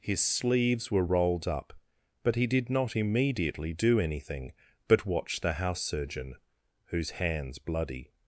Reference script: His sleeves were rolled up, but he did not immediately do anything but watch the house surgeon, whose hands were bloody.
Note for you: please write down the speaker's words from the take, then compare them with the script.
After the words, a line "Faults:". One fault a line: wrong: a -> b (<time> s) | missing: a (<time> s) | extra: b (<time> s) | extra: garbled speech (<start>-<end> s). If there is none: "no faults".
His sleeves were rolled up, but he did not immediately do anything but watch the house surgeon, whose hands bloody.
Faults:
missing: were (7.6 s)